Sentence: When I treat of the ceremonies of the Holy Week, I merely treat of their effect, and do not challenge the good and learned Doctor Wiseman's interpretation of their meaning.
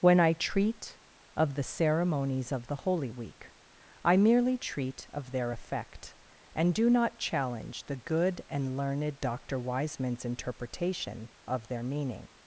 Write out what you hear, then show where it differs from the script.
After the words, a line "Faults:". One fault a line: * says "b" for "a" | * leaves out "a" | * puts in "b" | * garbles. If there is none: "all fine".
When I treat of the ceremonies of the Holy Week, I merely treat of their effect, and do not challenge the good and learned Doctor Wiseman's interpretation of their meaning.
Faults:
all fine